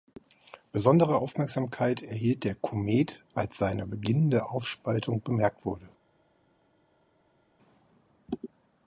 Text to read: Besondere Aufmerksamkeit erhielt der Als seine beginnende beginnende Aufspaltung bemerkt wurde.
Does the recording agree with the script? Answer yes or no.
no